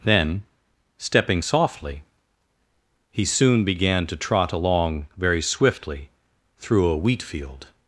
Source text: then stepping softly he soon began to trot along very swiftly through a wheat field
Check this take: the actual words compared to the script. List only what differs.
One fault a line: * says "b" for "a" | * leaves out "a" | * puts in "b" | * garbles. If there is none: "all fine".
all fine